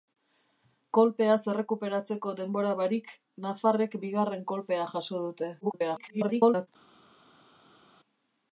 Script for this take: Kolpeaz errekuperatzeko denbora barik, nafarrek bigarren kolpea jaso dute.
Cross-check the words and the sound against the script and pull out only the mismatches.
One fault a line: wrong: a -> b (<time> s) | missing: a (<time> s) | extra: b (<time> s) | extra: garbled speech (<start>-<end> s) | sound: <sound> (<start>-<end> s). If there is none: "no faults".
extra: garbled speech (5.6-6.7 s)